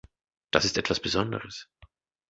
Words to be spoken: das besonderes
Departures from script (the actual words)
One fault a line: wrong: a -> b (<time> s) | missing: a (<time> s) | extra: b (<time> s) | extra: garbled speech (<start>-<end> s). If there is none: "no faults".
extra: ist etwas (0.6 s)